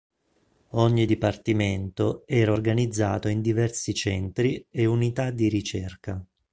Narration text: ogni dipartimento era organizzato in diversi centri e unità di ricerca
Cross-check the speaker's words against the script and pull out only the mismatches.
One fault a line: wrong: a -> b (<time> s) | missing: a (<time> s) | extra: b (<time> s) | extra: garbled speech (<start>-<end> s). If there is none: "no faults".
no faults